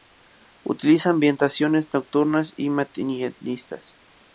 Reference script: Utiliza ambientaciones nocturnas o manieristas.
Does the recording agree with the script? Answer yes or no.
no